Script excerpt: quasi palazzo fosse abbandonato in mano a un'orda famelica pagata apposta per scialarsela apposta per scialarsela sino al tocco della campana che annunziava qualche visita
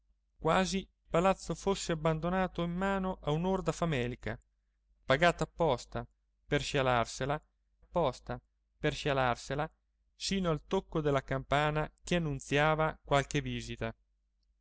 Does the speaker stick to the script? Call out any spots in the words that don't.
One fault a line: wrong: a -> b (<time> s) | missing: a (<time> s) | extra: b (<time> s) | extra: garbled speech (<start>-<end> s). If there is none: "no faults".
no faults